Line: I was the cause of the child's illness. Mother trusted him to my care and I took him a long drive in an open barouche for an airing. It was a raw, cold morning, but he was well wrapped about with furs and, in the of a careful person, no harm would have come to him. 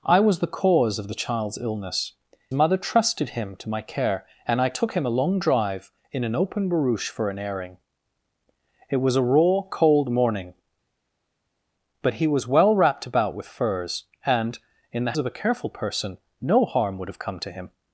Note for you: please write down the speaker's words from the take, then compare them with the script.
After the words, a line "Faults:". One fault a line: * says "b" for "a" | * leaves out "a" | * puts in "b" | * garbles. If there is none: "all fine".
I was the cause of the child's illness. Mother trusted him to my care and I took him a long drive in an open barouche for an airing. It was a raw, cold morning, but he was well wrapped about with furs and, in the of a careful person, no harm would have come to him.
Faults:
all fine